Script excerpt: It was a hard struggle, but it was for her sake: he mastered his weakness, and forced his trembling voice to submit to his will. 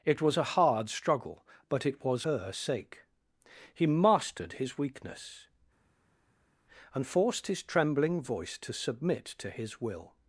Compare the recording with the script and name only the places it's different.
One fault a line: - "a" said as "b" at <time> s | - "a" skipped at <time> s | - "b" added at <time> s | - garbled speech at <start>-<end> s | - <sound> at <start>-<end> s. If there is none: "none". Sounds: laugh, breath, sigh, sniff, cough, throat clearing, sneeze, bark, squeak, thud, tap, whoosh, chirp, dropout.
- "for" skipped at 2.2 s